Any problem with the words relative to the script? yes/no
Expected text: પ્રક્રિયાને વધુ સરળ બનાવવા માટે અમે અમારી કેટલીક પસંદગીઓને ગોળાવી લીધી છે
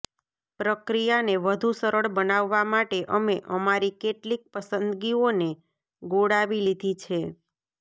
no